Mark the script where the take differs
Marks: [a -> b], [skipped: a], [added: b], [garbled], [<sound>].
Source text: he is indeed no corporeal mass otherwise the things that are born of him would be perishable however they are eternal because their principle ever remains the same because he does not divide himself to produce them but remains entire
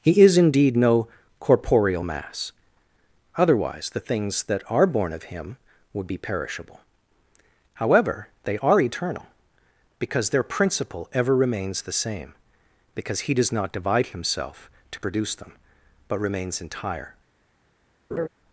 he is indeed no corporeal mass otherwise the things that are born of him would be perishable however they are eternal because their principle ever remains the same because he does not divide himself to produce them but remains entire [laugh]